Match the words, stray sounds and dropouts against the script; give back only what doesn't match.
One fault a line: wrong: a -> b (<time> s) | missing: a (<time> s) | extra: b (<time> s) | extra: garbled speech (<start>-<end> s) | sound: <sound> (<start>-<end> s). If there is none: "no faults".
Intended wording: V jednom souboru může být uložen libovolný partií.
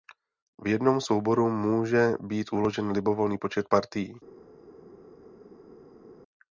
extra: počet (3.4 s)